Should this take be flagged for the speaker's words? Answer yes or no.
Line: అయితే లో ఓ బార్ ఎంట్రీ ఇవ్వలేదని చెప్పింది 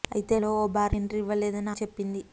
no